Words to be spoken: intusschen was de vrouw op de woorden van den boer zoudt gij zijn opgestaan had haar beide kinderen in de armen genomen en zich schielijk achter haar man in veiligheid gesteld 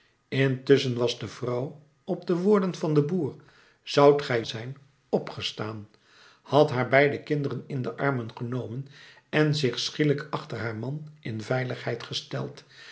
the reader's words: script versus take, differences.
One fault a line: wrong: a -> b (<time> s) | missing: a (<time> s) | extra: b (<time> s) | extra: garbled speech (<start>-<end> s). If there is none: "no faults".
no faults